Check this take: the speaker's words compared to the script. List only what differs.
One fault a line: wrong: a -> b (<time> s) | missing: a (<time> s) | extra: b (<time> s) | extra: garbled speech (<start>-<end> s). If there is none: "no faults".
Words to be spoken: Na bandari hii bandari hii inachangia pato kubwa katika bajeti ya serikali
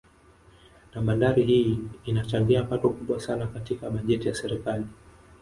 missing: bandari hii (1.8 s)
extra: sana (3.2 s)